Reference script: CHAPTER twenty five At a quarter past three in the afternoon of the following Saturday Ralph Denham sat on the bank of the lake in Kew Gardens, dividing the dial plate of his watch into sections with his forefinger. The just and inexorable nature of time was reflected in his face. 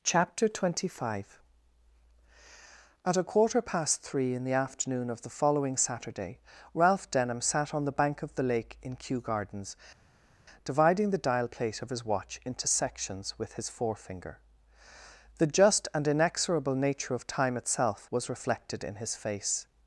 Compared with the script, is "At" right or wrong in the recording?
right